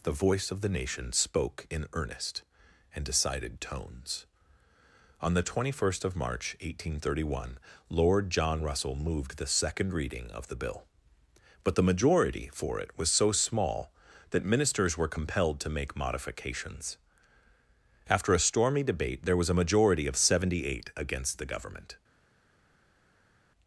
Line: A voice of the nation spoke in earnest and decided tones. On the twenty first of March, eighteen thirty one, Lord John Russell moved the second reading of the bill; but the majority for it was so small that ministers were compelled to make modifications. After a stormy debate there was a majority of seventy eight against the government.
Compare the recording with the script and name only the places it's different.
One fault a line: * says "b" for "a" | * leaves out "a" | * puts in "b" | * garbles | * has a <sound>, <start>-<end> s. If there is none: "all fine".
* says "The" for "A"